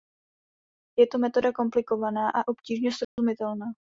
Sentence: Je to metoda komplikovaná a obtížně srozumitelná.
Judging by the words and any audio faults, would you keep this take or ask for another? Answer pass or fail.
fail